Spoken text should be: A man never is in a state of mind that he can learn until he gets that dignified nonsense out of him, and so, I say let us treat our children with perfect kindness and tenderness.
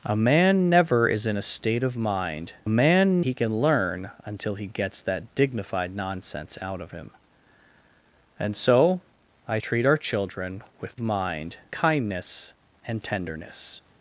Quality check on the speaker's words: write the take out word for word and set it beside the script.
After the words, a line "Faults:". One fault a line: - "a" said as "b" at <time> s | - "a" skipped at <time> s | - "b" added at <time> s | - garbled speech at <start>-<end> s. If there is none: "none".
A man never is in a state of mind man he can learn until he gets that dignified nonsense out of him, and so, I treat our children with mind kindness and tenderness.
Faults:
- "that" said as "man" at 2.7 s
- "say let us" skipped at 9.6 s
- "perfect" said as "mind" at 11.0 s